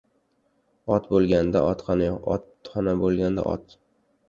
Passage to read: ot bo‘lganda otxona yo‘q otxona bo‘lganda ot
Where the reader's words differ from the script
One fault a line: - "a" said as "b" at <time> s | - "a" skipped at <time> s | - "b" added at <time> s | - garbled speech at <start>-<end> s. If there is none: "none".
none